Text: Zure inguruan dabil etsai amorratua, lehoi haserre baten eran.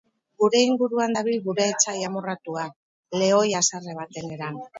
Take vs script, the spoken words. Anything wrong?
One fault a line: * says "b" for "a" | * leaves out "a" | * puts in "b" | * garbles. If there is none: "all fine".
* says "Gure" for "Zure"
* puts in "gure"